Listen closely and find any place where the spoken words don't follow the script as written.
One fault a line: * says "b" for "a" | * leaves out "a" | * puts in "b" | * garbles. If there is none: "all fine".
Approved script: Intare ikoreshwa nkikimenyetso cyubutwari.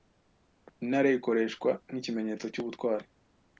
all fine